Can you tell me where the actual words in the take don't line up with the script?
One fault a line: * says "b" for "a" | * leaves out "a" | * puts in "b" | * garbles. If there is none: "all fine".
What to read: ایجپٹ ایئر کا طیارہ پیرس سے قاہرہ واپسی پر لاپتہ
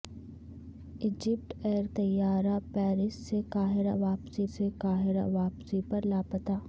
* leaves out "کا"
* puts in "سے قاہرہ واپسی"